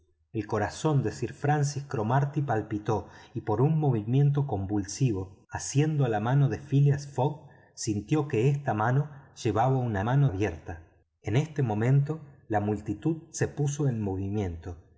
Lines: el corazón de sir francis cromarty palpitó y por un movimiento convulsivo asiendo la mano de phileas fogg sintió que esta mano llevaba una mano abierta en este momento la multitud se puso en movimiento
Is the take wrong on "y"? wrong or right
right